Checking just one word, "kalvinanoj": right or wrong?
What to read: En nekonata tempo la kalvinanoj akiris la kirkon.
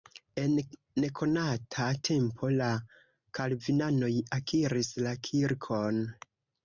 right